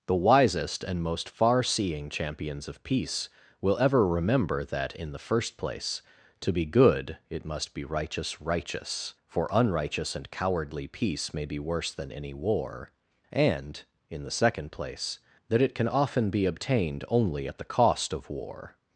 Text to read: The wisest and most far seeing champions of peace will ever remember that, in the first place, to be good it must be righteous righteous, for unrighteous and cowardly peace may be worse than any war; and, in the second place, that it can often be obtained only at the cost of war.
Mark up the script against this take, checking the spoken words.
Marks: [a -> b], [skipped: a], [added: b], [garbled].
The wisest and most far seeing champions of peace will ever remember that, in the first place, to be good it must be righteous righteous, for unrighteous and cowardly peace may be worse than any war; and, in the second place, that it can often be obtained only at the cost of war.